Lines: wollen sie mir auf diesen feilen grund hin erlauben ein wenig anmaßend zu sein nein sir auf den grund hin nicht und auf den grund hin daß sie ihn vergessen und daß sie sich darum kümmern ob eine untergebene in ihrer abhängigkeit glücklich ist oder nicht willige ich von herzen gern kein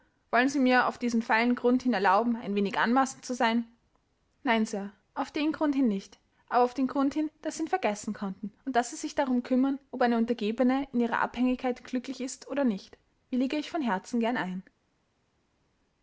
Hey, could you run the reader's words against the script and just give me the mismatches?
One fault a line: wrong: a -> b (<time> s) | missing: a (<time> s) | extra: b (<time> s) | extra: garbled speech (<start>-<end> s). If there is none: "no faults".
wrong: und -> aber (6.5 s)
extra: konnten (8.2 s)
wrong: kein -> ein (14.4 s)